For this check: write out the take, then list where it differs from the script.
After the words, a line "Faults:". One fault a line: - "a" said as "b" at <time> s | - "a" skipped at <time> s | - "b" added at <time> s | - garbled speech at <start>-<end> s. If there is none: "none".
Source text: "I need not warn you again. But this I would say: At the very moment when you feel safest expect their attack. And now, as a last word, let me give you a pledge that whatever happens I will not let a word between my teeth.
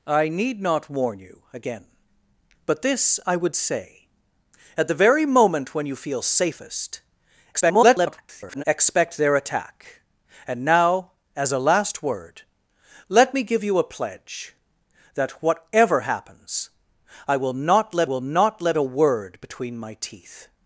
"I need not warn you again. But this I would say: At the very moment when you feel safest [garbled] expect their attack. And now, as a last word, let me give you a pledge that whatever happens I will not let will not let a word between my teeth.
Faults:
- garbled speech at 7.5-8.6 s
- "will not let" added at 18.0 s